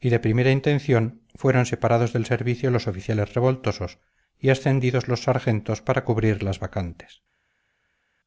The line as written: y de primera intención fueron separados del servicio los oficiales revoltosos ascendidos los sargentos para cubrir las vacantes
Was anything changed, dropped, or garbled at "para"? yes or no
no